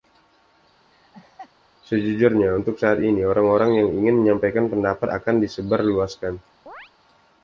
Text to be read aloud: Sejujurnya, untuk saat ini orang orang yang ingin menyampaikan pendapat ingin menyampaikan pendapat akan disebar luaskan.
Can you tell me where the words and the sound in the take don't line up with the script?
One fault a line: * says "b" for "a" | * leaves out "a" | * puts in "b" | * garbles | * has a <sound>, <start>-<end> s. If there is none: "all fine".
* has a laugh, 0.9-1.5 s
* leaves out "ingin menyampaikan pendapat"
* has a chirp, 6.7-6.9 s